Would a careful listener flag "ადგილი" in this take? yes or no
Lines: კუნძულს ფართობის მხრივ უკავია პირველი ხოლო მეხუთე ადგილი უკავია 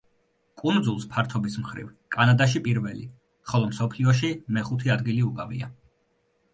no